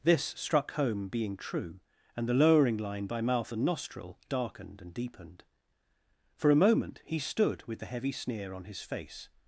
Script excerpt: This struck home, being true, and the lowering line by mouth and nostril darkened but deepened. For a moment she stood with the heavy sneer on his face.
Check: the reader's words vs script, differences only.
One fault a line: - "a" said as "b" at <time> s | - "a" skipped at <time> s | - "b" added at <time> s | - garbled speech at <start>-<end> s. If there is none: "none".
- "but" said as "and" at 4.8 s
- "she" said as "he" at 7.0 s